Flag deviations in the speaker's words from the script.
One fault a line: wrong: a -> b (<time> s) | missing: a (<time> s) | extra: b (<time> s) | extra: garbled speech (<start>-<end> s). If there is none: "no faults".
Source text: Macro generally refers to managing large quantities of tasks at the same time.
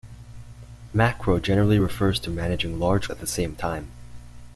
missing: quantities of tasks (3.1 s)